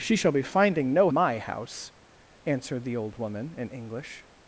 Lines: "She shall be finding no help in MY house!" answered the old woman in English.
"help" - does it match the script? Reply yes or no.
no